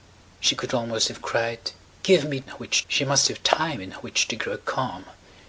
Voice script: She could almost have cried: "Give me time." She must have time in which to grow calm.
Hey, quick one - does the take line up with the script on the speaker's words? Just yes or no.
no